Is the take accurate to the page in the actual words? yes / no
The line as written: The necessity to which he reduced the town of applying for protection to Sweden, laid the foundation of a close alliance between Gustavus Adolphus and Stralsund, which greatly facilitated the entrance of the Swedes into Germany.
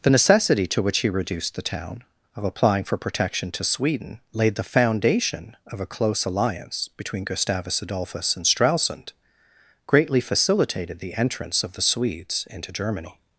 no